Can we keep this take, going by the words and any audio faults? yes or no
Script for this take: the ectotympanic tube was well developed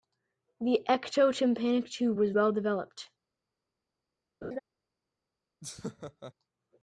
no